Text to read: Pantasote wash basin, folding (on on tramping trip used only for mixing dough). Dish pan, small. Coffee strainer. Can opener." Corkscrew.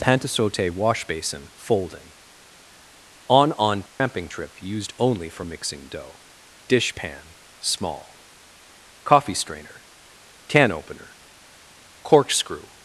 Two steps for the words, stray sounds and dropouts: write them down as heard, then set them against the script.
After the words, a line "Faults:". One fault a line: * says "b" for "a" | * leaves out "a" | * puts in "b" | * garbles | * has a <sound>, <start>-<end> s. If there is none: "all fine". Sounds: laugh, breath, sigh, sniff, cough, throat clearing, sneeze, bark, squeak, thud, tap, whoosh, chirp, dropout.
Pantasote wash basin, folding (on on tramping trip used only for mixing dough). Dish pan, small. Coffee strainer. Can opener." Corkscrew.
Faults:
* has a dropout, 3.9-4.0 s